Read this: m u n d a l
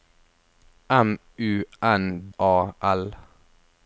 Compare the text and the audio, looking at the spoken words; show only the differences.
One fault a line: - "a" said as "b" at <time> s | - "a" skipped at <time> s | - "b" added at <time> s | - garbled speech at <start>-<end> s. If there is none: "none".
- "d" skipped at 2.3 s